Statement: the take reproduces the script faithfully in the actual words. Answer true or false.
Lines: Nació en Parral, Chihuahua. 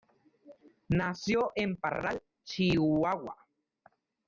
true